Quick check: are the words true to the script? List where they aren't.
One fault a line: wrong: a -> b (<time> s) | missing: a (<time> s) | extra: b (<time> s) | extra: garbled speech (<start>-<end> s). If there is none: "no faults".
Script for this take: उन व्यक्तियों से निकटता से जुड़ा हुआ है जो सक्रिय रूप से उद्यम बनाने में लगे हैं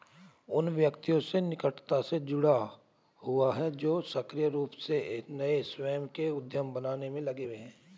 extra: नए स्वयं के (5.3 s)
extra: हुए (7.4 s)